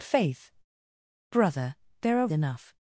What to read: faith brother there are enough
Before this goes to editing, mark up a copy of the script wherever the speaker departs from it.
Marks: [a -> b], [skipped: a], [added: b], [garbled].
faith brother there are enough